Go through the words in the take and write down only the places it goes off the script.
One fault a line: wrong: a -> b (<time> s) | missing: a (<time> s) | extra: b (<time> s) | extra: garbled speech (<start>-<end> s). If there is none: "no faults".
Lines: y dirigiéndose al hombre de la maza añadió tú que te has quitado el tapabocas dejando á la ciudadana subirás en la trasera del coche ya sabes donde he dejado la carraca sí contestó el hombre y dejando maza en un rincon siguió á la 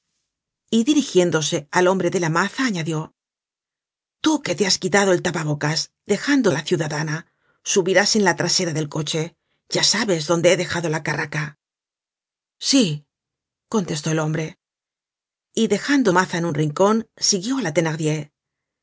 no faults